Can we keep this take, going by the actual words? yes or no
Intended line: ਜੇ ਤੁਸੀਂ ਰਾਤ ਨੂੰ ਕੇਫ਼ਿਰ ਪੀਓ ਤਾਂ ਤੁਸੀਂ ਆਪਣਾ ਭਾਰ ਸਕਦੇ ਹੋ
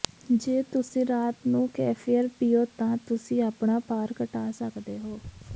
no